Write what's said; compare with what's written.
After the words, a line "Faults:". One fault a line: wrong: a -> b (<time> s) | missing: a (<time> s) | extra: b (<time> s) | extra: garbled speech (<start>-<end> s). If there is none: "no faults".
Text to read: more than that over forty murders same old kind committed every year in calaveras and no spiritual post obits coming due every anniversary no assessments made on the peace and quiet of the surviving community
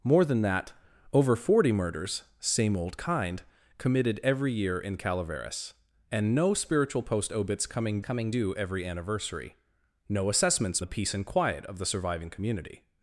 more than that over forty murders same old kind committed every year in calaveras and no spiritual post obits coming coming due every anniversary no assessments the peace and quiet of the surviving community
Faults:
extra: coming (8.0 s)
missing: made on (10.8 s)